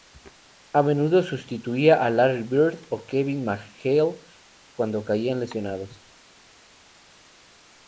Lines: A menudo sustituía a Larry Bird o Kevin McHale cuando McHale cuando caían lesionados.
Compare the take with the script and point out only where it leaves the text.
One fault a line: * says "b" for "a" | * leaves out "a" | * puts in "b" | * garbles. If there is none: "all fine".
* leaves out "McHale cuando"